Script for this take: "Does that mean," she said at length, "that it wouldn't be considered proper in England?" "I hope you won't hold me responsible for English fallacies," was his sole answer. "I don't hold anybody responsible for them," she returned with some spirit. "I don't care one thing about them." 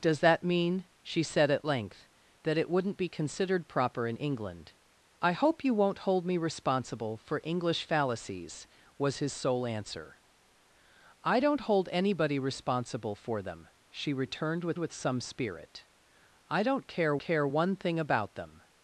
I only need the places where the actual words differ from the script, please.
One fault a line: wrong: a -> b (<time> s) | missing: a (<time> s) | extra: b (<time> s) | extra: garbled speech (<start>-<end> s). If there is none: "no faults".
extra: with (14.8 s)
extra: care (17.2 s)